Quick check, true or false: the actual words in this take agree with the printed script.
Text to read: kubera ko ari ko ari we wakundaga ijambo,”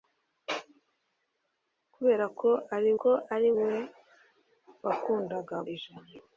true